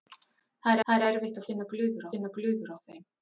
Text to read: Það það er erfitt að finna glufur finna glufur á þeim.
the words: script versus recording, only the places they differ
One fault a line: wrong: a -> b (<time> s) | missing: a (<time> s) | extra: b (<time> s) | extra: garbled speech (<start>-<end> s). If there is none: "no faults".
no faults